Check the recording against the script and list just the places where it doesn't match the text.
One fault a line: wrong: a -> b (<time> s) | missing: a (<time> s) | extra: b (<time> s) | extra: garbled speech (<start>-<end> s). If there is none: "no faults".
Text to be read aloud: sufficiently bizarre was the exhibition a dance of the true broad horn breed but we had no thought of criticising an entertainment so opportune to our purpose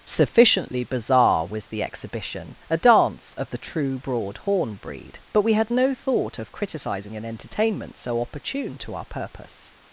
no faults